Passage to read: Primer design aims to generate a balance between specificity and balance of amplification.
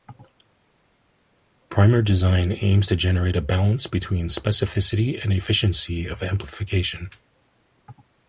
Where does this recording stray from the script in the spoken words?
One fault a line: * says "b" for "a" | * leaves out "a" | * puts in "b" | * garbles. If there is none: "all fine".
* says "efficiency" for "balance"